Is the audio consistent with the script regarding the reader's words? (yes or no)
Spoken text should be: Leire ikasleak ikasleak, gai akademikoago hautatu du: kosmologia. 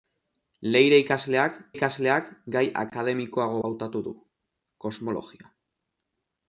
yes